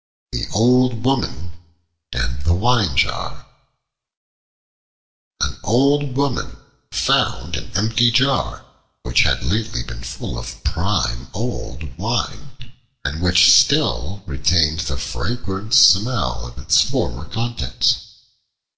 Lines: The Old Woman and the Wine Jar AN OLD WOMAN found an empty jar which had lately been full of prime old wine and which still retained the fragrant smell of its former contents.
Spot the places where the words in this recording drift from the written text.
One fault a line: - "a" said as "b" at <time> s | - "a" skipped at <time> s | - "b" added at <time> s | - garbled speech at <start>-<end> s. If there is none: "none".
none